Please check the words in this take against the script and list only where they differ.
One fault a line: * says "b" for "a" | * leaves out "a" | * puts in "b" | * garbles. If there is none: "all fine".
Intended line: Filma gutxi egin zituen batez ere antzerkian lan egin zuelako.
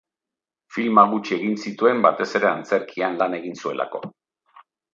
all fine